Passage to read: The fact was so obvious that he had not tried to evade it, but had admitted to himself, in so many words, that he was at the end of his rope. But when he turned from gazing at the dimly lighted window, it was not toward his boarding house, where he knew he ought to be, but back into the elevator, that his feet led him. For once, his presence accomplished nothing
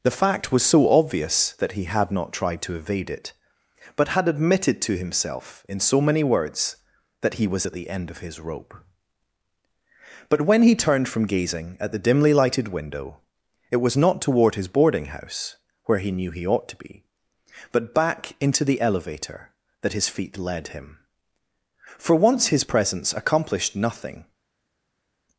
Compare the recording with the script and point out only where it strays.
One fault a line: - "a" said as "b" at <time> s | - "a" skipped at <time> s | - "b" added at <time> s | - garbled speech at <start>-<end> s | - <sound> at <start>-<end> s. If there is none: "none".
none